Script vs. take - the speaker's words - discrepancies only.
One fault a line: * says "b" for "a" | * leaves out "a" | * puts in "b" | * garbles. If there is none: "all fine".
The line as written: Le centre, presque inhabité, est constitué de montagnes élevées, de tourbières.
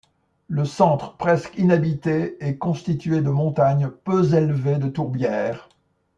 * puts in "peu"